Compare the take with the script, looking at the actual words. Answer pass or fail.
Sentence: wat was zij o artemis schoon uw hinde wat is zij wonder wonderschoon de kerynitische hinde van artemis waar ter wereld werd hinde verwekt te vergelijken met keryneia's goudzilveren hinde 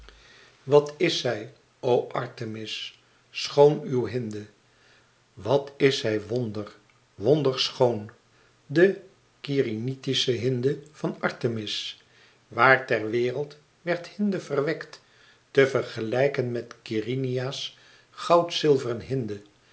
fail